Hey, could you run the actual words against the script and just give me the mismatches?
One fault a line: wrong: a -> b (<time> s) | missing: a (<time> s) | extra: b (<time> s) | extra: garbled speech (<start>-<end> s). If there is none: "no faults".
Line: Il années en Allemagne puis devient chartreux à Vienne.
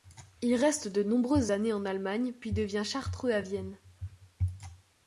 extra: reste de nombreuses (0.6 s)